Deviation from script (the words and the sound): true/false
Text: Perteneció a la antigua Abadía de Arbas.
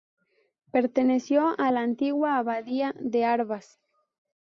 false